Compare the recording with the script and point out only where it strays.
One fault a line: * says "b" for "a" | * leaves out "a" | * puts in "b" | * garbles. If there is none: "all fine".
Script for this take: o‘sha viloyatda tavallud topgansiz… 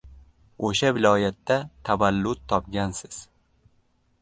all fine